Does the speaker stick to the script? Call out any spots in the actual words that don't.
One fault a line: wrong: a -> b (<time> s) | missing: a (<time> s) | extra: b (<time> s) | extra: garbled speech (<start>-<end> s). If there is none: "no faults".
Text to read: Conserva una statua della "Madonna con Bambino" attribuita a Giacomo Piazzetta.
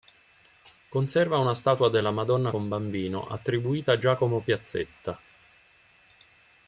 no faults